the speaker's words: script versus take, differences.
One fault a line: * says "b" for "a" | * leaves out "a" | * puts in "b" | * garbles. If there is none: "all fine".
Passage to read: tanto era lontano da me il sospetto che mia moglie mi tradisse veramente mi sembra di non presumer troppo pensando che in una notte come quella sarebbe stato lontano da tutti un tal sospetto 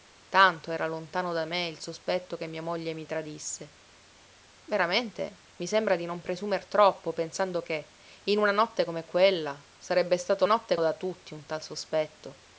* says "notte" for "lontano"